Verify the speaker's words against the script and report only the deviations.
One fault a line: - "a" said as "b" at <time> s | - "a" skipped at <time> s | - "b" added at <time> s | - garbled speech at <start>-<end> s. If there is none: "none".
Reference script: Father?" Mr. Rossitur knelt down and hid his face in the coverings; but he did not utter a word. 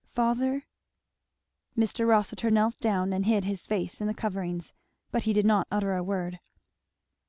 none